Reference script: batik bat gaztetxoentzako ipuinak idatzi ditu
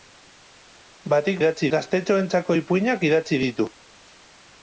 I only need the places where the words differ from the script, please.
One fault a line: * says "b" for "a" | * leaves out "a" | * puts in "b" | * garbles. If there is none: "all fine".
* says "idatzi" for "bat"